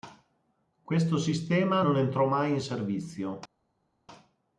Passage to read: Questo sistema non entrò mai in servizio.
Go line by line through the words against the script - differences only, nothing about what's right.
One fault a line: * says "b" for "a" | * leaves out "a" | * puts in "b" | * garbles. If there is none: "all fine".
all fine